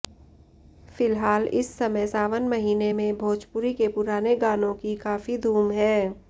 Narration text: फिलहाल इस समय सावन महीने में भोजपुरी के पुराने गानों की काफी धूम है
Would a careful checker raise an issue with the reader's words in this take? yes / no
no